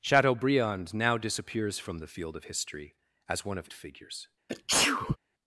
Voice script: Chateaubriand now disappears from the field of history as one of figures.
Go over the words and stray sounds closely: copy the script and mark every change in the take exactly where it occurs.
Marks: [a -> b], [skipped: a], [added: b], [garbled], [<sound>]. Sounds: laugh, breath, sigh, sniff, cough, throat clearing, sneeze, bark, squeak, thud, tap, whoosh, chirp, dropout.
Chateaubriand now disappears from the field of history as one of figures. [sneeze]